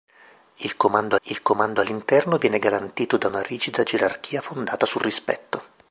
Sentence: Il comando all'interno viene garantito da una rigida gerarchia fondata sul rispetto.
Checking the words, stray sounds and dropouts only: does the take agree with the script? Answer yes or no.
no